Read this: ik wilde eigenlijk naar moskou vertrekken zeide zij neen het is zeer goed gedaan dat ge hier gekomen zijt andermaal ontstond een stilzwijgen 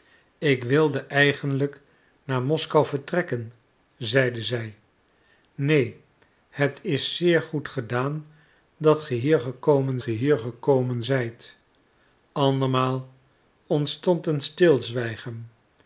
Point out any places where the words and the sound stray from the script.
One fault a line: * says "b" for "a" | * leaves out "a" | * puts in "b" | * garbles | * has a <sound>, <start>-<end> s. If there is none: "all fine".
* puts in "ge hier gekomen"